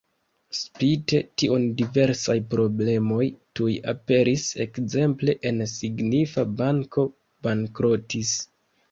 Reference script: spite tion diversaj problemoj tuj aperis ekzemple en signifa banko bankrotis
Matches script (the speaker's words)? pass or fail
pass